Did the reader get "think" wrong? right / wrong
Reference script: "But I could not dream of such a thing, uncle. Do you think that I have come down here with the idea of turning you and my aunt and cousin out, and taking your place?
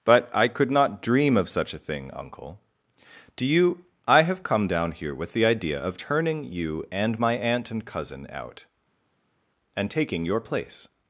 wrong